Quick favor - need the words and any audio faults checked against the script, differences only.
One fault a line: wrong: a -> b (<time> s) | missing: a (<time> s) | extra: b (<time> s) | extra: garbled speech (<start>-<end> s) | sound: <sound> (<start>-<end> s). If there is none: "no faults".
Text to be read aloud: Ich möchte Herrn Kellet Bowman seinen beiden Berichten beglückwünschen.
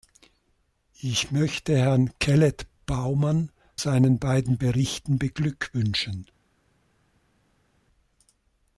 no faults